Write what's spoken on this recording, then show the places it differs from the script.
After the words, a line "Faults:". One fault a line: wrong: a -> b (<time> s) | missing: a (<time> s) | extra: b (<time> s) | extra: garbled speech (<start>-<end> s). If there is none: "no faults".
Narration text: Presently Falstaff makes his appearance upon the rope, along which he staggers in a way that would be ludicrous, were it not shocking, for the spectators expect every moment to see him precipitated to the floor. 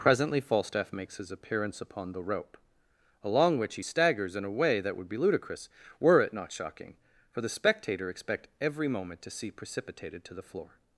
Presently Falstaff makes his appearance upon the rope, along which he staggers in a way that would be ludicrous, were it not shocking, for the spectator expect every moment to see precipitated to the floor.
Faults:
wrong: spectators -> spectator (7.5 s)
missing: him (9.5 s)